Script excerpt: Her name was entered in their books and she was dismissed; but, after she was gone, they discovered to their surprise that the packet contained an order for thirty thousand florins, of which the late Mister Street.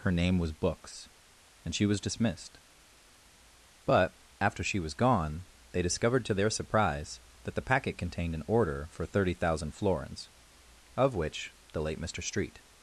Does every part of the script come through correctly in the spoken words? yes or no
no